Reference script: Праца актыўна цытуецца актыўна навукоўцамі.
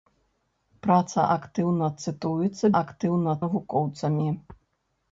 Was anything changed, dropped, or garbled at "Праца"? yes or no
no